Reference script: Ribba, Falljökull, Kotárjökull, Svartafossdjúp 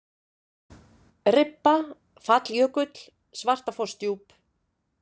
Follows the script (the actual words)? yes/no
no